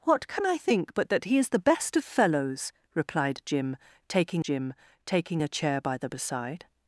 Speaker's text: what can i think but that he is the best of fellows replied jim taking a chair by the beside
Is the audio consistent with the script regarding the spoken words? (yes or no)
no